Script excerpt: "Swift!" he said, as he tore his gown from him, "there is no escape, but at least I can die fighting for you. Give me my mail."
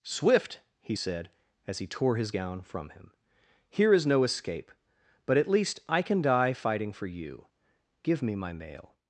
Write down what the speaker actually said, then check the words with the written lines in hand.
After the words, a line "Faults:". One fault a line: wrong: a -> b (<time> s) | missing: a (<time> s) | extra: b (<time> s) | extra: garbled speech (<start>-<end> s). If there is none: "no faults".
"Swift!" he said, as he tore his gown from him, "here is no escape, but at least I can die fighting for you. Give me my mail."
Faults:
wrong: there -> here (3.7 s)